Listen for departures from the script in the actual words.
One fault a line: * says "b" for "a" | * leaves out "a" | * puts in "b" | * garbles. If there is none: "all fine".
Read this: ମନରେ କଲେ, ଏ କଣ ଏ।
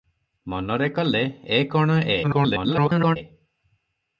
* garbles